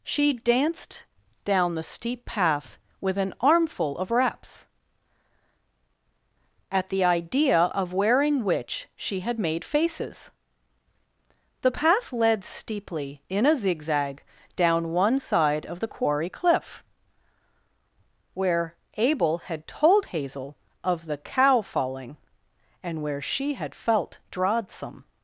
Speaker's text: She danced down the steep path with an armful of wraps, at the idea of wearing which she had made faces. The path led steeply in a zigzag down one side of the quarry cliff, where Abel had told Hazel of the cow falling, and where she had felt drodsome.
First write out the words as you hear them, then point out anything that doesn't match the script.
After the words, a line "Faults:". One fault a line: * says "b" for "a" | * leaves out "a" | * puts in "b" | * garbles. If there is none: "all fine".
She danced down the steep path with an armful of wraps, at the idea of wearing which she had made faces. The path led steeply in a zigzag down one side of the quarry cliff, where Abel had told Hazel of the cow falling, and where she had felt drodsome.
Faults:
all fine